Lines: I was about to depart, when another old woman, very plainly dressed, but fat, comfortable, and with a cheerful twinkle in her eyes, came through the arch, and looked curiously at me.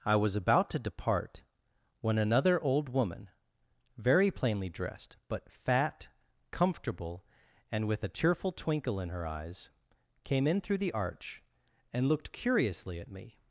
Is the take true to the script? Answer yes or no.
no